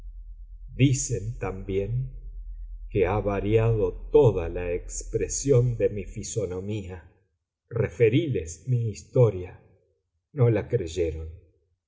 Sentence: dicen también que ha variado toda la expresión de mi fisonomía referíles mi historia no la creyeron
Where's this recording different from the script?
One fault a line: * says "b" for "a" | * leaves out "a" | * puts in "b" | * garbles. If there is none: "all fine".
all fine